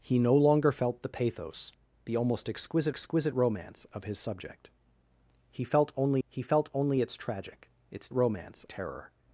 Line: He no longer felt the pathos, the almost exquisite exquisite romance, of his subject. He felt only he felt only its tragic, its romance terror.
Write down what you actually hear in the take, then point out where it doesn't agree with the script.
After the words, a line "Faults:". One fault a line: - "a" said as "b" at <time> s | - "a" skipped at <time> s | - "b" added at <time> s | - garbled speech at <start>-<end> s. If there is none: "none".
He no longer felt the pathos, the almost exquisite exquisite romance, of his subject. He felt only he felt only its tragic, its romance terror.
Faults:
none